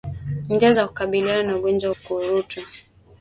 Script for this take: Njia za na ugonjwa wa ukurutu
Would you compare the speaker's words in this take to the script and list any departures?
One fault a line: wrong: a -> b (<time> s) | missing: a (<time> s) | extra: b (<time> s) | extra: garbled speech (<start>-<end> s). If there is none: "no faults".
extra: kukabiliana (0.9 s)